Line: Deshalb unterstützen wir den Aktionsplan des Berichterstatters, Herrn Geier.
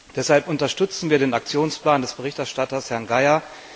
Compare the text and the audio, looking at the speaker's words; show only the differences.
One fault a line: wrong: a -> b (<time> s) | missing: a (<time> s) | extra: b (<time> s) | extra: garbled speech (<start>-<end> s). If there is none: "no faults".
no faults